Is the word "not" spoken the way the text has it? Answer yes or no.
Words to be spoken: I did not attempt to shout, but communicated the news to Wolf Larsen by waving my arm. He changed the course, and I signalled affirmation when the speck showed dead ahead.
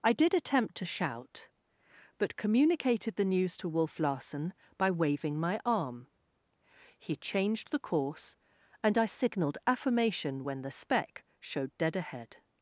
no